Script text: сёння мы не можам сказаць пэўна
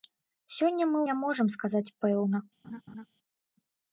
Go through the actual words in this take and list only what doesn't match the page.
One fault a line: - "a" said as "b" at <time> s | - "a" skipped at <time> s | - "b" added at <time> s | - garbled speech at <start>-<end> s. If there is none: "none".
none